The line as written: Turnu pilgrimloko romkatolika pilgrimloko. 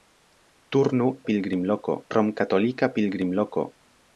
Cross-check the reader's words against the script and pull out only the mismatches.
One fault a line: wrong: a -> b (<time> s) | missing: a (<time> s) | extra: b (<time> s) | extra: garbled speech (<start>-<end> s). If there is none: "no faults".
no faults